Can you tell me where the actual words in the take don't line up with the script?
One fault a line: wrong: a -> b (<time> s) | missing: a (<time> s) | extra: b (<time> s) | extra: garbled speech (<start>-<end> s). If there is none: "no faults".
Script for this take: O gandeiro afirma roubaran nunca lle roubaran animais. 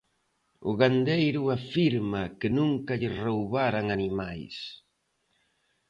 wrong: roubaran -> que (2.4 s)